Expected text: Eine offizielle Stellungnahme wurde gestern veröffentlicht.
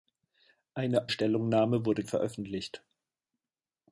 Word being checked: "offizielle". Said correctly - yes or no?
no